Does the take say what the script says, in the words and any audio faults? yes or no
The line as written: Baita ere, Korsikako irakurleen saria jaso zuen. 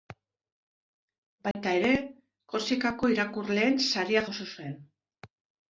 no